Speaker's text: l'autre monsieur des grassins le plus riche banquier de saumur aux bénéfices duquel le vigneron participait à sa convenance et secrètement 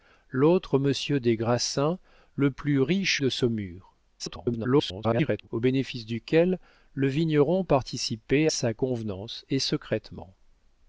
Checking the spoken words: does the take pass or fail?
fail